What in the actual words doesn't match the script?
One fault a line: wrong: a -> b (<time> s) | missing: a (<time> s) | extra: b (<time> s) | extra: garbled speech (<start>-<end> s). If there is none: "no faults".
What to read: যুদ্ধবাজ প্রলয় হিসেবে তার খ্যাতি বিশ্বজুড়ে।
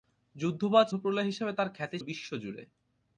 no faults